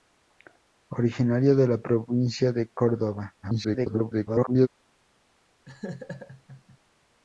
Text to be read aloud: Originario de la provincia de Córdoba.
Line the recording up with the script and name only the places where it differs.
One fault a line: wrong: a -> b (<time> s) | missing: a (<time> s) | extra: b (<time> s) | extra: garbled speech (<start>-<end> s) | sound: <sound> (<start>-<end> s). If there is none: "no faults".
extra: garbled speech (3.4-4.7 s)
sound: laugh (5.7-6.8 s)